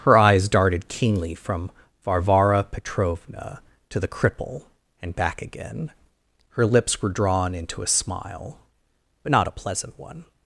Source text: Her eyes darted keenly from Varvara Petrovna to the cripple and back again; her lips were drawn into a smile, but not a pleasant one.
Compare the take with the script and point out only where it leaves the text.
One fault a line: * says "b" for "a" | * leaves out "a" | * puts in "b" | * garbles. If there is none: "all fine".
all fine